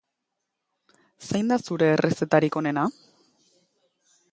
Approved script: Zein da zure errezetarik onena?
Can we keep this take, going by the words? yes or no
yes